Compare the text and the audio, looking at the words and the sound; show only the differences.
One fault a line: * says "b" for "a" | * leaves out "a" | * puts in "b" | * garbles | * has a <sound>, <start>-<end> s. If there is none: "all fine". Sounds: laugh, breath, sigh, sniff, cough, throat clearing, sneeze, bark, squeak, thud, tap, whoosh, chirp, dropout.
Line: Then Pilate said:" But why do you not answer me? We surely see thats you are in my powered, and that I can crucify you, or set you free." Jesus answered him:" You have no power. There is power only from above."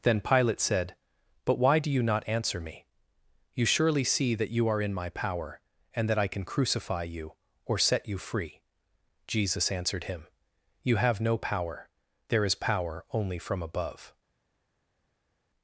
* says "You" for "We"
* says "that" for "thats"
* says "power" for "powered"